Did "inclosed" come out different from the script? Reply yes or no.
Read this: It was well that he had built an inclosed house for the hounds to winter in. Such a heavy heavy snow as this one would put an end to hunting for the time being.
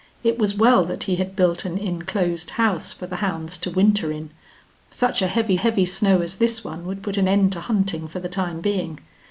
no